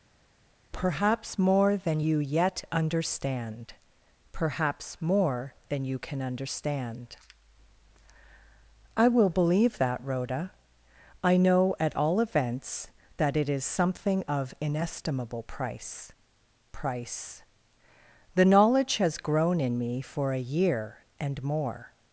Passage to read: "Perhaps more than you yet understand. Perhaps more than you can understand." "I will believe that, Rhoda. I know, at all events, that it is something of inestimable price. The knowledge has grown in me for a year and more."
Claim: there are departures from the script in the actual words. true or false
true